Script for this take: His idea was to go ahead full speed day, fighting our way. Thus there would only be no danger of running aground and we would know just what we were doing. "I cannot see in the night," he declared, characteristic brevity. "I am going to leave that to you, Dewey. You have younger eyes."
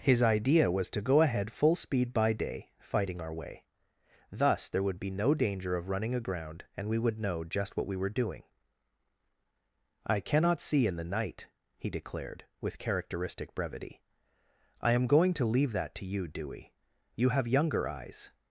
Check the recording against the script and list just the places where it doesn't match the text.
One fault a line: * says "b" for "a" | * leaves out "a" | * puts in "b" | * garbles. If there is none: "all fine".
* puts in "by"
* leaves out "only"
* puts in "with"